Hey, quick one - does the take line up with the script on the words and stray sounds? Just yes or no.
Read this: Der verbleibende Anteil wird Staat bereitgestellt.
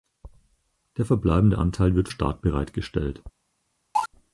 no